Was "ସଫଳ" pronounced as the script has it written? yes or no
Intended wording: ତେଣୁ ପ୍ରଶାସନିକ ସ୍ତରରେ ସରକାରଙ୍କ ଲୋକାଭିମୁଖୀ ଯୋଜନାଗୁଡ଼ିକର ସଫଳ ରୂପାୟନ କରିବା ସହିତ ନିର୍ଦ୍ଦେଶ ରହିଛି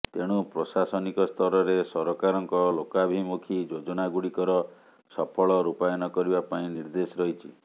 yes